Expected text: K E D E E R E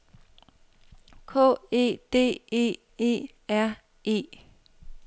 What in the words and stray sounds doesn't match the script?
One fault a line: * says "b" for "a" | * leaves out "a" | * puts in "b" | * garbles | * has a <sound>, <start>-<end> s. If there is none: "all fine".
all fine